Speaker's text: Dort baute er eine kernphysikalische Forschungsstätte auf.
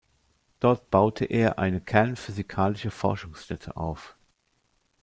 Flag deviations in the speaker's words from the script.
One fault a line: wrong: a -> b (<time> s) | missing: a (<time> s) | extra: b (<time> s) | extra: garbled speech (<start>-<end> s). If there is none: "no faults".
no faults